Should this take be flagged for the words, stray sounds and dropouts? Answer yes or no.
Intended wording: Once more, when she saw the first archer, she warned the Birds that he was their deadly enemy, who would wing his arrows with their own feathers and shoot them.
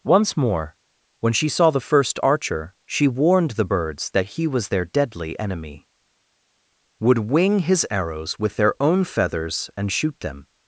yes